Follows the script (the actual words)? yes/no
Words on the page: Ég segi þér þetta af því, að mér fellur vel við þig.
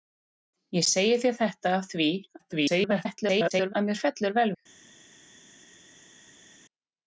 no